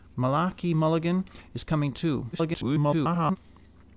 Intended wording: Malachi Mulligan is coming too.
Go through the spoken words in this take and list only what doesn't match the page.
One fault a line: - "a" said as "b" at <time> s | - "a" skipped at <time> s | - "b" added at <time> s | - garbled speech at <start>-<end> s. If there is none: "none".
- garbled speech at 2.3-3.4 s